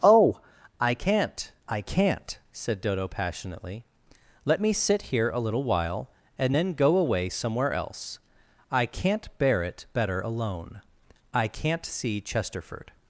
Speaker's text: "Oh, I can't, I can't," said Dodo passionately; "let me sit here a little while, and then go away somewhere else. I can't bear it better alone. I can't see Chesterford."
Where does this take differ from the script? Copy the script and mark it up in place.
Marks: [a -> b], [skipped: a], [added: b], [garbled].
"Oh, I can't, I can't," said Dodo passionately; "let me sit here a little while, and then go away somewhere else. I can't bear it better alone. I can't see Chesterford."